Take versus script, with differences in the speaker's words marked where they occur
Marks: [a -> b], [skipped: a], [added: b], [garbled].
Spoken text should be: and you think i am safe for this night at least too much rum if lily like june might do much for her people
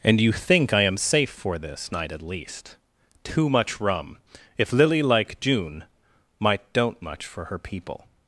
and you think i am safe for this night at least too much rum if lily like june might [do -> don't] much for her people